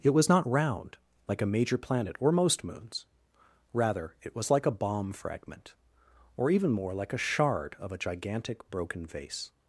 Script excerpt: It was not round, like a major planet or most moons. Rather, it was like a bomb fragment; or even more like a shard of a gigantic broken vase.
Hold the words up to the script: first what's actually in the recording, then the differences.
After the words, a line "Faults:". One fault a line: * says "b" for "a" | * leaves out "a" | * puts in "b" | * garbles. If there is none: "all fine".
It was not round, like a major planet or most moons. Rather, it was like a bomb fragment; or even more like a shard of a gigantic broken vase.
Faults:
all fine